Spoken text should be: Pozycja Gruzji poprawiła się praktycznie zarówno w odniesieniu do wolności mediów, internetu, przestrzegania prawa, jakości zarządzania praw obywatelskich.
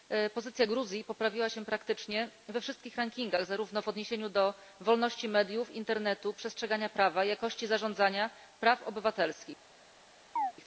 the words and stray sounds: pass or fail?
fail